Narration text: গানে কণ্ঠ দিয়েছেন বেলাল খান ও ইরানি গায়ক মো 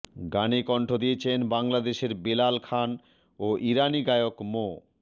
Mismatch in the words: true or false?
true